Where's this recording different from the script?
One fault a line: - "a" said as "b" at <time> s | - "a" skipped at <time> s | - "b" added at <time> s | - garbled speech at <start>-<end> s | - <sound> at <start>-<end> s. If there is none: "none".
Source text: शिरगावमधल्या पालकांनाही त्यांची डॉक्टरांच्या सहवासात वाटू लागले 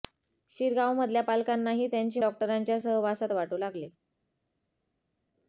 none